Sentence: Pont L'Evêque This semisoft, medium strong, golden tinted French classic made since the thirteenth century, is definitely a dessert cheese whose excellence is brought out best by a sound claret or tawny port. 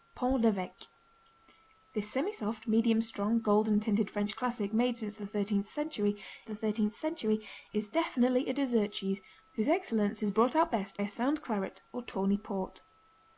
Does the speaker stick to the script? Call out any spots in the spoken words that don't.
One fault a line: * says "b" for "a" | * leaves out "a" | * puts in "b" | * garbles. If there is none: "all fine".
* puts in "the thirteenth century"
* leaves out "by"